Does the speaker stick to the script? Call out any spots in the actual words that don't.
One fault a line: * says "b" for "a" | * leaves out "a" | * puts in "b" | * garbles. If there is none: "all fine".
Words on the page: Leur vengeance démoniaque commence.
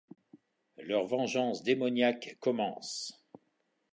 all fine